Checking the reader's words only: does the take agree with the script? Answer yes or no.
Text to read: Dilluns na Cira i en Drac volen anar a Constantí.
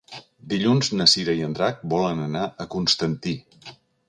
yes